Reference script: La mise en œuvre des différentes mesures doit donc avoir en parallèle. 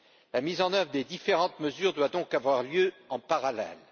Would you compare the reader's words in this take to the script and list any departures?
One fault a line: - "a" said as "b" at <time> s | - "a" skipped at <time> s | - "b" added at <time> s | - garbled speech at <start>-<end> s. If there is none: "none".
- "lieu" added at 2.6 s